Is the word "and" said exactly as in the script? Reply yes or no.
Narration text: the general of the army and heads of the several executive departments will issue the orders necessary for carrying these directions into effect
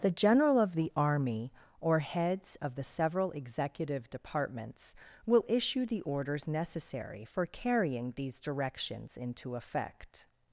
no